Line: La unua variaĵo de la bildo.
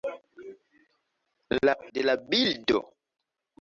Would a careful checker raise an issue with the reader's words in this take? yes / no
yes